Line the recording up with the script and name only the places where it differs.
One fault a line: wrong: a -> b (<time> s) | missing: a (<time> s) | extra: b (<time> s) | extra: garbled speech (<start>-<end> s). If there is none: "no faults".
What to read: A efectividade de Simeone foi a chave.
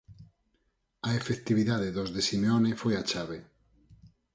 extra: dos (2.0 s)